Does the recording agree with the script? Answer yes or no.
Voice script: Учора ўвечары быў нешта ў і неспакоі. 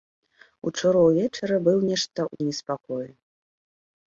yes